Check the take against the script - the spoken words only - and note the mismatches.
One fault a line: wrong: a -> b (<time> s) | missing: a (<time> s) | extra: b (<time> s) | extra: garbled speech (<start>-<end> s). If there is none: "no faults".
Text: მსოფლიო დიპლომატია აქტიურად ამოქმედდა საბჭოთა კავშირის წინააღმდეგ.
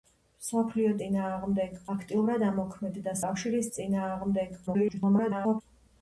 wrong: დიპლომატია -> წინააღმდეგ (1.0 s)
missing: საბჭოთა (3.2 s)
extra: garbled speech (4.7-5.6 s)